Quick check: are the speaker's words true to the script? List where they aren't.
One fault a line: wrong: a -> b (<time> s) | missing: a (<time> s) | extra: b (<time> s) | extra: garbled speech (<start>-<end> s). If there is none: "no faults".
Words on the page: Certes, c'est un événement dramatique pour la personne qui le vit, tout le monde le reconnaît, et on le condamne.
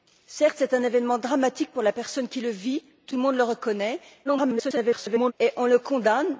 extra: garbled speech (4.2-5.3 s)